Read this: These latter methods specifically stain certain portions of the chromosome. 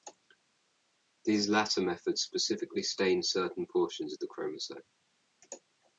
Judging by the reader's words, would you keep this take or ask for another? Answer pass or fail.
pass